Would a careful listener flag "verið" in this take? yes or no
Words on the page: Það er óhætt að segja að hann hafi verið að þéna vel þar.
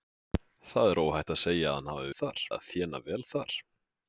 yes